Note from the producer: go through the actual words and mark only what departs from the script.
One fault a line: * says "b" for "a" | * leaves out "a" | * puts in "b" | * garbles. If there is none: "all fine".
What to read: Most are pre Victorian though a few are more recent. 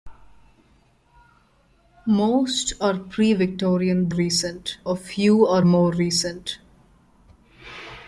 * says "recent" for "though"